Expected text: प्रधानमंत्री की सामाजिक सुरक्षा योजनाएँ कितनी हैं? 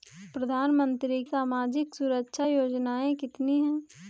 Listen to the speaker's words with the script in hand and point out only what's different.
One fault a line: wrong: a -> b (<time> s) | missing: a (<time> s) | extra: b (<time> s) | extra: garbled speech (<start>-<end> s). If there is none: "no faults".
missing: की (1.2 s)